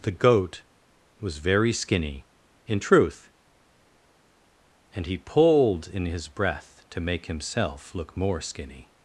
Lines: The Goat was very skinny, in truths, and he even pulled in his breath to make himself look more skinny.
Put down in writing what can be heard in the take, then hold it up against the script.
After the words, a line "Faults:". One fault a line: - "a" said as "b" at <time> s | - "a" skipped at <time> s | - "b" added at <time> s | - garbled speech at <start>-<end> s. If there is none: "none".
The Goat was very skinny, in truth, and he pulled in his breath to make himself look more skinny.
Faults:
- "truths" said as "truth" at 2.8 s
- "even" skipped at 5.2 s